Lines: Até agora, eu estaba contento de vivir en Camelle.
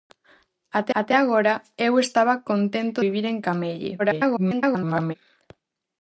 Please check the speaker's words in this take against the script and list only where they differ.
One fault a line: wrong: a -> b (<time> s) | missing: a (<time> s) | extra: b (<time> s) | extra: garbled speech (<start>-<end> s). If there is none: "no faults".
extra: até (1.0 s)
missing: de (3.0 s)
extra: garbled speech (4.0-5.1 s)